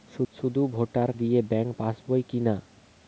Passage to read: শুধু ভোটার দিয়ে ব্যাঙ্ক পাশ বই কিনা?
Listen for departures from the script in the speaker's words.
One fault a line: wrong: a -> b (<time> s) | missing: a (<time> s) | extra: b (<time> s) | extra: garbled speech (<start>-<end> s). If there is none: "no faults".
no faults